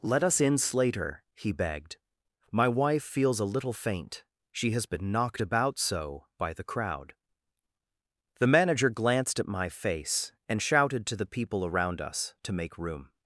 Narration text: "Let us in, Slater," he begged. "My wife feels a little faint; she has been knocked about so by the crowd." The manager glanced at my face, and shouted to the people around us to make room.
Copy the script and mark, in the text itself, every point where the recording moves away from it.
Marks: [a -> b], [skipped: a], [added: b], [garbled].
"Let us in, Slater," he begged. "My wife feels a little faint; she has been knocked about so by the crowd." The manager glanced at my face, and shouted to the people around us to make room.